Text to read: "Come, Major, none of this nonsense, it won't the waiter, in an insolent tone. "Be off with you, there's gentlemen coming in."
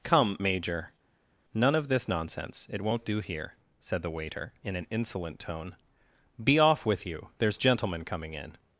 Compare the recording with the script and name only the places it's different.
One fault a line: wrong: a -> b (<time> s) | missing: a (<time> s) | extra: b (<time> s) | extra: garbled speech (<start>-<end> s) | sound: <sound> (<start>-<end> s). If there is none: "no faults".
extra: do here said (3.0 s)